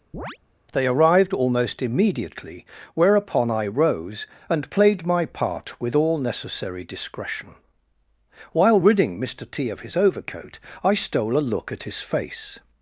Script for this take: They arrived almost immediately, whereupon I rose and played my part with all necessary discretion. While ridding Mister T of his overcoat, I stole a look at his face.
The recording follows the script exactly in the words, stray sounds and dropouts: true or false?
false